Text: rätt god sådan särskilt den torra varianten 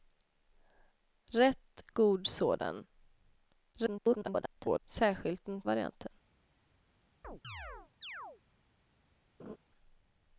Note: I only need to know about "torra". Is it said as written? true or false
false